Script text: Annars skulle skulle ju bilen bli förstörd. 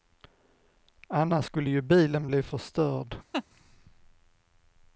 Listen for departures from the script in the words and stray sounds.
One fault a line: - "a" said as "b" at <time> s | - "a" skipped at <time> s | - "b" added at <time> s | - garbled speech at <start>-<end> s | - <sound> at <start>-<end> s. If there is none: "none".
- "skulle" skipped at 1.7 s
- laugh at 3.3-3.4 s